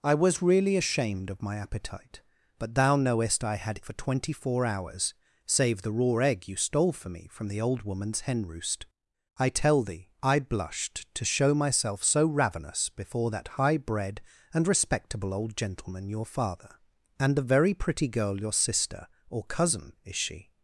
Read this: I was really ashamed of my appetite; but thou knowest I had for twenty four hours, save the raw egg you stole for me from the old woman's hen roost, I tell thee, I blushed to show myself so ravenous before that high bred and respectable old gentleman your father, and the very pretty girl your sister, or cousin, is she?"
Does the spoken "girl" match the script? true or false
true